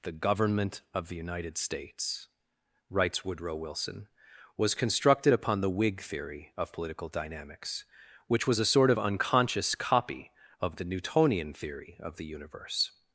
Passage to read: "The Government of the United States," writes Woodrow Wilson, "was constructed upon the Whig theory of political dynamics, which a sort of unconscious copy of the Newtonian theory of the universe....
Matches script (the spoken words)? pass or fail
fail